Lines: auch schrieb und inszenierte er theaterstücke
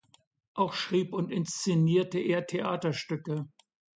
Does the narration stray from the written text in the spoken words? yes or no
no